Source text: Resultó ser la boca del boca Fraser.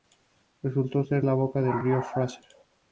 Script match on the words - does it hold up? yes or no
no